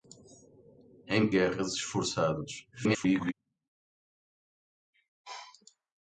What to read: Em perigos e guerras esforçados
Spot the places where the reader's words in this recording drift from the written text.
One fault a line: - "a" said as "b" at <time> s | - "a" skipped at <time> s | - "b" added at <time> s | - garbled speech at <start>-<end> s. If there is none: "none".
- "perigos e" skipped at 1.3 s
- garbled speech at 2.7-3.3 s